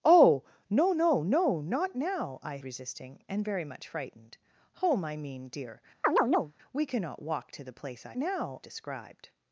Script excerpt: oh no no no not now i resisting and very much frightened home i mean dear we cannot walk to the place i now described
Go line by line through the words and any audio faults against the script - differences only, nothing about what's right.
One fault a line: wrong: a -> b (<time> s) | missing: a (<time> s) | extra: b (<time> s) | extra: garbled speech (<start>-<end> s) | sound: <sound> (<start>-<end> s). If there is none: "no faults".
sound: chirp (6.0-6.5 s)